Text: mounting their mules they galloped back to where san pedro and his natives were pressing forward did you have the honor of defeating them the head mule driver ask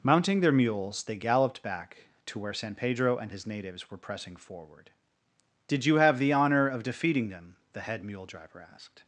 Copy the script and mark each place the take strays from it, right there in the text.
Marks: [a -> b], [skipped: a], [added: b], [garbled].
mounting their mules they galloped back to where san pedro and his natives were pressing forward did you have the honor of defeating them the head mule driver [ask -> asked]